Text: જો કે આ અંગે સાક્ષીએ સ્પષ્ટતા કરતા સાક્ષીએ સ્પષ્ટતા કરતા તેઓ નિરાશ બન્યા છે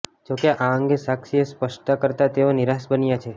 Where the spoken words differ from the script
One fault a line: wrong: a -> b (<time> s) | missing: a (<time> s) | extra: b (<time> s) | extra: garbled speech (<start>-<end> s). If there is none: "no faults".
missing: સાક્ષીએ સ્પષ્ટતા કરતા (2.3 s)